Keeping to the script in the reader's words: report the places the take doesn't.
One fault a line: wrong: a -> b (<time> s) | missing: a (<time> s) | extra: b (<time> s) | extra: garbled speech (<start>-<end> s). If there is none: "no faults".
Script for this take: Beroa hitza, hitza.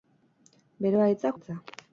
no faults